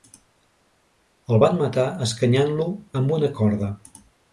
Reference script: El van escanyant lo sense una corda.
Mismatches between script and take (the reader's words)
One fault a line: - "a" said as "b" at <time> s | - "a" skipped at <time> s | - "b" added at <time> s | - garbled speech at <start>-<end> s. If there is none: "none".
- "matar" added at 1.7 s
- "sense" said as "amb" at 3.0 s